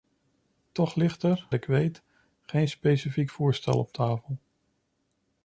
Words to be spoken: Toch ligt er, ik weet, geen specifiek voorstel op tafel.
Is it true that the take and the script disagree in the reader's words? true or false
false